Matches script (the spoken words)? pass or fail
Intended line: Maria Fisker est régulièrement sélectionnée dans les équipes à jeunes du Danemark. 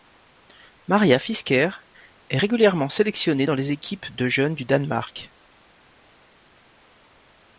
fail